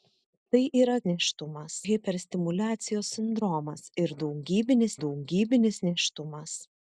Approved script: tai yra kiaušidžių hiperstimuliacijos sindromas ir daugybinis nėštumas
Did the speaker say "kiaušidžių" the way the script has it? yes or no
no